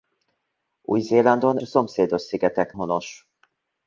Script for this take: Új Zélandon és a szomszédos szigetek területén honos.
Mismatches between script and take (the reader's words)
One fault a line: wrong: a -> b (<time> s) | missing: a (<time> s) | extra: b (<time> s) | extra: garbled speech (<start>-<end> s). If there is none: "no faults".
missing: és (1.6 s)
missing: területén (2.7 s)